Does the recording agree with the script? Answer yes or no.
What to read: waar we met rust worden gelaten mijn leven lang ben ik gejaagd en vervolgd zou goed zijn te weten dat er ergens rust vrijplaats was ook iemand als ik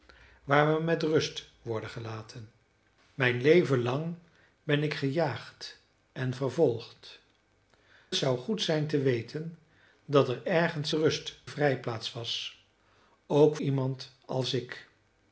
yes